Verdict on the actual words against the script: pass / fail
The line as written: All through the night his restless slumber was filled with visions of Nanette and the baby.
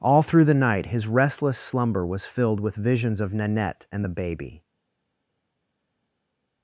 pass